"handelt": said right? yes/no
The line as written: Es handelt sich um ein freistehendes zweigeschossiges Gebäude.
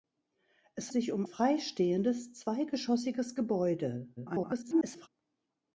no